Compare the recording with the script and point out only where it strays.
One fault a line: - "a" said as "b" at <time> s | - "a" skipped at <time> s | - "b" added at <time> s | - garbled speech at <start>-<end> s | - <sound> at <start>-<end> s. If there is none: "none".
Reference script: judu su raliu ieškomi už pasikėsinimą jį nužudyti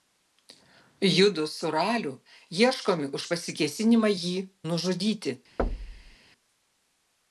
- thud at 5.6-6.2 s